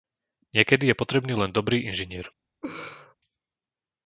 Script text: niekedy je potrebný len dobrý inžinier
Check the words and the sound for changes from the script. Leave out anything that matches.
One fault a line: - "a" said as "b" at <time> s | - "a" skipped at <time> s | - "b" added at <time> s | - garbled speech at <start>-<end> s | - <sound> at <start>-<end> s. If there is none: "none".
- laugh at 2.6-3.1 s